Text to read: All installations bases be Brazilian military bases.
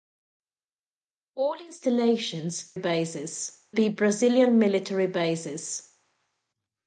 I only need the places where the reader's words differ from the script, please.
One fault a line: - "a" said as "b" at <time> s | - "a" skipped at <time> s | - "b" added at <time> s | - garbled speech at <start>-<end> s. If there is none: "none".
none